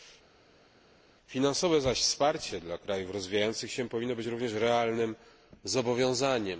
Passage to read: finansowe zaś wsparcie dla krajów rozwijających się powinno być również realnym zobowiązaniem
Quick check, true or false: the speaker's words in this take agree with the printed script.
true